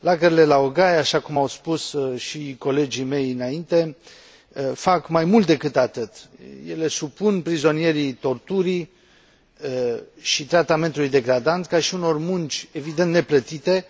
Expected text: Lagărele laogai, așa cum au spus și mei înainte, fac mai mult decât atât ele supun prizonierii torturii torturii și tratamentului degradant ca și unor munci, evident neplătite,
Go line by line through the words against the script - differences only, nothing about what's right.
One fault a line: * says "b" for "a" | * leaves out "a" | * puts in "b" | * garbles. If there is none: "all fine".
* puts in "colegii"
* leaves out "torturii"